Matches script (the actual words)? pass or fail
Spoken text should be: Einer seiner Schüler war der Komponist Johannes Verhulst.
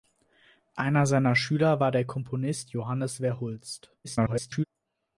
fail